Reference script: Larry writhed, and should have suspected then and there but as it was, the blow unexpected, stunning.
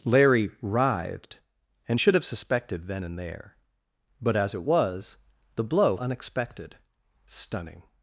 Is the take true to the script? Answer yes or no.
yes